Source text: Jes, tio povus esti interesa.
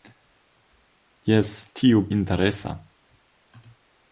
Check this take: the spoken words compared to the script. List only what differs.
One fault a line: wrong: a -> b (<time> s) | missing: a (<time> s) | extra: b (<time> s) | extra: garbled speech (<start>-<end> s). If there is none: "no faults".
missing: povus esti (2.0 s)